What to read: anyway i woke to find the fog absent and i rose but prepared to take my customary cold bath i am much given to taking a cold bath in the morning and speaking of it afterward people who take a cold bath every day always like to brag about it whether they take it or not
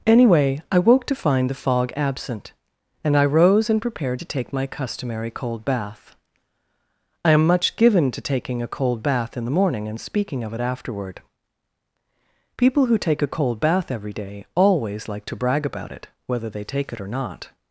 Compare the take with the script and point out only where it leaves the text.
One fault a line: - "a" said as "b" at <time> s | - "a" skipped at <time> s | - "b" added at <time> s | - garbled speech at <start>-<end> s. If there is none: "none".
- "but" said as "and" at 3.7 s